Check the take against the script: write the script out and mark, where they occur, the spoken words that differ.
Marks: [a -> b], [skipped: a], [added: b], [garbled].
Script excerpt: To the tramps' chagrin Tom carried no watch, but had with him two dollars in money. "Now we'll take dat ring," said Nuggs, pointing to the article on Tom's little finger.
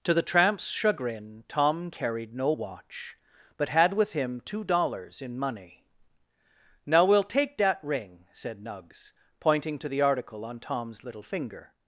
To the tramps' chagrin Tom carried no watch, but had with him two dollars in money. "Now we'll take dat ring," said Nuggs, pointing to the article on Tom's little finger.